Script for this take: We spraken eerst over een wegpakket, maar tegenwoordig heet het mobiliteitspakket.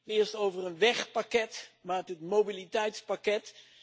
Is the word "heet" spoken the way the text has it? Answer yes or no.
no